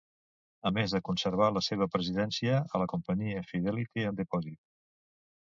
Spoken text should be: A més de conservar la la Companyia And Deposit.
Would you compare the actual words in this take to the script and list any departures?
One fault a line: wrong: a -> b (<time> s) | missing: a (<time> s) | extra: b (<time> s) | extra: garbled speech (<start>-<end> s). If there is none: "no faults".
extra: seva presidència a (1.7 s)
extra: Fidelity (3.5 s)